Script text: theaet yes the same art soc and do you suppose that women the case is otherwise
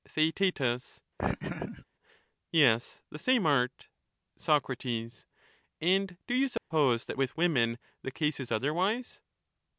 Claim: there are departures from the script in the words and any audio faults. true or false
true